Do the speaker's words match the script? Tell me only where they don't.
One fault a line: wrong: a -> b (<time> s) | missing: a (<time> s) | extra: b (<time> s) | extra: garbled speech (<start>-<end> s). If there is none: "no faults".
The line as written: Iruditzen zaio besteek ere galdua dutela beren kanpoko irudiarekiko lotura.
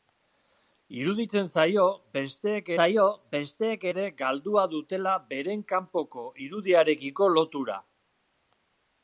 extra: zaio besteek (2.8 s)